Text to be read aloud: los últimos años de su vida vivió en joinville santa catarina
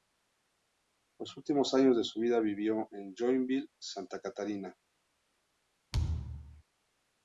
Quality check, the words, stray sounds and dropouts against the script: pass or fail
fail